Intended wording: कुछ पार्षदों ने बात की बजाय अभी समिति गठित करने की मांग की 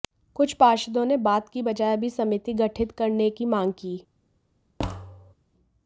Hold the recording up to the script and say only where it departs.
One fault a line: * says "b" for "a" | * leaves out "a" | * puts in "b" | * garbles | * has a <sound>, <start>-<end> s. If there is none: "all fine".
* has a thud, 4.8-5.3 s